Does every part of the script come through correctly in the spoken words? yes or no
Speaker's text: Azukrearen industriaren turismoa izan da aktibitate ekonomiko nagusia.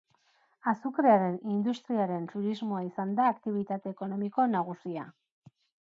yes